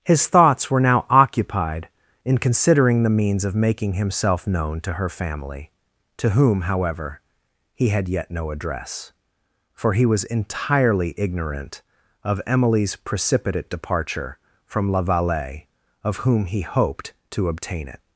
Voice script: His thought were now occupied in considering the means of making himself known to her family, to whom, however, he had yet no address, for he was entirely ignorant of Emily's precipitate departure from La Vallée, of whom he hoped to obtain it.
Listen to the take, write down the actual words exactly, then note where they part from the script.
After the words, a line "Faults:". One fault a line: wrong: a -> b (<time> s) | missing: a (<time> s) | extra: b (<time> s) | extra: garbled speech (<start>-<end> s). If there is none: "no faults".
His thoughts were now occupied in considering the means of making himself known to her family, to whom, however, he had yet no address, for he was entirely ignorant of Emily's precipitate departure from La Vallée, of whom he hoped to obtain it.
Faults:
wrong: thought -> thoughts (0.3 s)